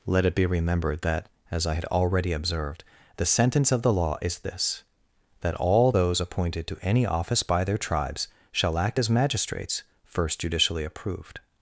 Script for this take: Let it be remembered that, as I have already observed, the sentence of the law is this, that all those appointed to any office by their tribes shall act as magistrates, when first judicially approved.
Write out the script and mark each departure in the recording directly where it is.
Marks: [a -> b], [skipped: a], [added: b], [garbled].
Let it be remembered that, as I [have -> had] already observed, the sentence of the law is this, that all those appointed to any office by their tribes shall act as magistrates, [skipped: when] first judicially approved.